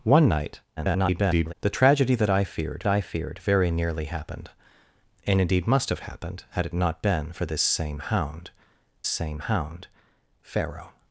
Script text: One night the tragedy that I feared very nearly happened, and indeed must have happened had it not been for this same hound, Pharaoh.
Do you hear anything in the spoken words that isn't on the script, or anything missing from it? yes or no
yes